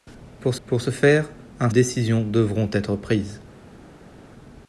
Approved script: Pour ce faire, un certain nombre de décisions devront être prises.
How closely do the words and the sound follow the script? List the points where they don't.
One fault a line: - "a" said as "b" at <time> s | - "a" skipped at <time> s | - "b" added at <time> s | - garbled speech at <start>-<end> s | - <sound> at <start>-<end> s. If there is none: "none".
- "pour" added at 0.7 s
- "certain nombre de" skipped at 1.7 s